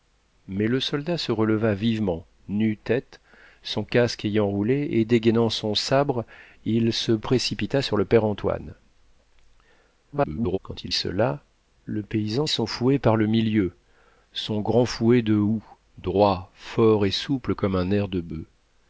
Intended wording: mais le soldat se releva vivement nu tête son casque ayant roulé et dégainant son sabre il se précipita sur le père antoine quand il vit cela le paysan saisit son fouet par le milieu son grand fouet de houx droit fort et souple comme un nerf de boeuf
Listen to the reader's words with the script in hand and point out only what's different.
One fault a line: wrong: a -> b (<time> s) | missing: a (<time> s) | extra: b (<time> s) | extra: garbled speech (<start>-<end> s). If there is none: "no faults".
extra: garbled speech (10.1-10.6 s)
missing: vit (10.9 s)
missing: saisit (12.5 s)